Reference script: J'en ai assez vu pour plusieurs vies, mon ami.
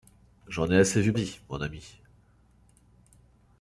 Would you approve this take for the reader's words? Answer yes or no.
no